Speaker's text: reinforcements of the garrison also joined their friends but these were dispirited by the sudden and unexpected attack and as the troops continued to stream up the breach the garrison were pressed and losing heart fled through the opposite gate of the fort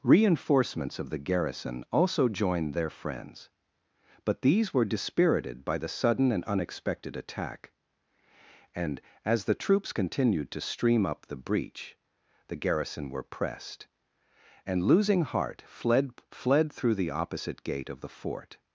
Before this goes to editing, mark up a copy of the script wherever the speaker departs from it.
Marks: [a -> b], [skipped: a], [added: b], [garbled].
reinforcements of the garrison also joined their friends but these were dispirited by the sudden and unexpected attack and as the troops continued to stream up the breach the garrison were pressed and losing heart fled [added: fled] through the opposite gate of the fort